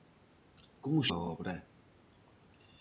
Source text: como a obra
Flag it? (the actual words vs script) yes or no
no